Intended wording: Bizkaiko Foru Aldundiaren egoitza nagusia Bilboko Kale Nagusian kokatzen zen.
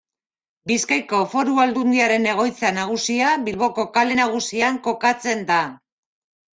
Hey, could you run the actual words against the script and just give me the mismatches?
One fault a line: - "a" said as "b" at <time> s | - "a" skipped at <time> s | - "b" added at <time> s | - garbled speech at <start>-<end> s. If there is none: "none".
- "zen" said as "da" at 5.5 s